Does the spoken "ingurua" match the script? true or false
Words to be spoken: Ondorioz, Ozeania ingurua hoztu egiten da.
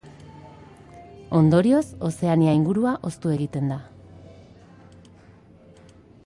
true